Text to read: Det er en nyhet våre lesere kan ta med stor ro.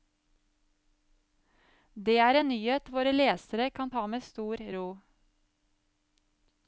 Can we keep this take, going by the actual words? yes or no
yes